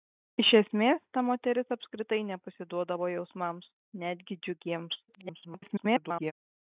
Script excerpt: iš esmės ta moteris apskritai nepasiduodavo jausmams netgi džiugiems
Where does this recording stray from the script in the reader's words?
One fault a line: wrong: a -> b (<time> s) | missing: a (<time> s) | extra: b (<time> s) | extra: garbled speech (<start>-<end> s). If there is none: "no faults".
extra: garbled speech (5.1-6.3 s)